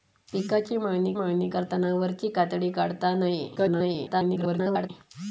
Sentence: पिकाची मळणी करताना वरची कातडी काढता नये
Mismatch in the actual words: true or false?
true